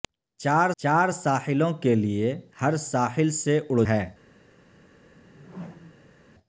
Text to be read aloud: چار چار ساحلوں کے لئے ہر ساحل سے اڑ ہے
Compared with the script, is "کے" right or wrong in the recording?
right